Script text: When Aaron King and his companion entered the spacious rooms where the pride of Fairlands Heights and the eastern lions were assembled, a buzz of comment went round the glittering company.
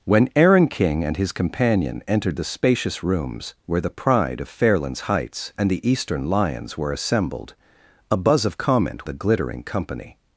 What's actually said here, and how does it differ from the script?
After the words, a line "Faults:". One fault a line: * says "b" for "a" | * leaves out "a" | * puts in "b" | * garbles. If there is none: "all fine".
When Aaron King and his companion entered the spacious rooms where the pride of Fairlands Heights and the eastern lions were assembled, a buzz of comment the glittering company.
Faults:
* leaves out "went round"